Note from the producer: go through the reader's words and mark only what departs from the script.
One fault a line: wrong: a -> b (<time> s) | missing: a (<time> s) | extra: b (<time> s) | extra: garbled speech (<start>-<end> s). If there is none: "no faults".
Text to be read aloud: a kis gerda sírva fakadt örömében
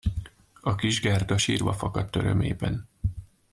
no faults